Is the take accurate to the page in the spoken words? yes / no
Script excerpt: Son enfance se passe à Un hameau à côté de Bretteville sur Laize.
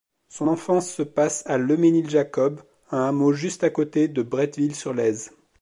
no